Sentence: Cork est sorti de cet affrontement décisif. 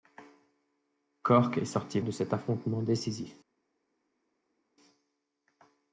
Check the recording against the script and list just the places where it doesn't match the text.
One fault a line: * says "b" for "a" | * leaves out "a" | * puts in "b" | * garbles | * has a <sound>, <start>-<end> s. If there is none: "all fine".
all fine